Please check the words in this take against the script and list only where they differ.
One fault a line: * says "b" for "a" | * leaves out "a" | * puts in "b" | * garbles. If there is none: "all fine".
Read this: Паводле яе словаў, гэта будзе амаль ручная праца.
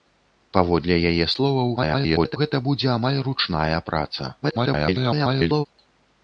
* garbles
* garbles